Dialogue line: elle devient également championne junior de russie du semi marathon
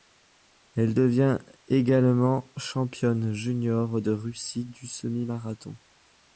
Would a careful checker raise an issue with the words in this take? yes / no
no